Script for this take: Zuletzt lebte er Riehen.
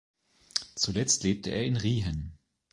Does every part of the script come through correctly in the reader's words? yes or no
no